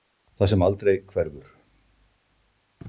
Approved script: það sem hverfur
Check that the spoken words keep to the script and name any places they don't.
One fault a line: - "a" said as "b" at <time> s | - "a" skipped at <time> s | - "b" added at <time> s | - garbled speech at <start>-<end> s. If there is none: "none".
- "aldrei" added at 0.7 s